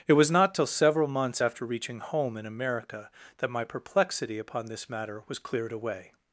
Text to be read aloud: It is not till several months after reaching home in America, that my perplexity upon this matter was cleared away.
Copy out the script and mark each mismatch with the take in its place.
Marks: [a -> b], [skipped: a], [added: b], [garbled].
It [is -> was] not till several months after reaching home in America, that my perplexity upon this matter was cleared away.